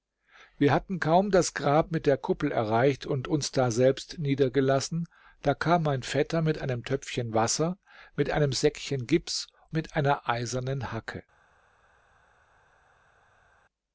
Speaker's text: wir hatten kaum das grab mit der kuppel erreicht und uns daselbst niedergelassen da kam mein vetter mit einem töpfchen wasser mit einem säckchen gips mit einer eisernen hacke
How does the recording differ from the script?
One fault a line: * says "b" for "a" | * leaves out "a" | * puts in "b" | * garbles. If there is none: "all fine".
all fine